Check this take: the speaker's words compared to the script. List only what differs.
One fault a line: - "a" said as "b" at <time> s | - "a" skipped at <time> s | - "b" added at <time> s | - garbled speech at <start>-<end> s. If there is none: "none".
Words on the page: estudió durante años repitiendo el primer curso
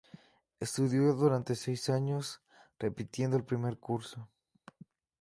- "seis" added at 1.5 s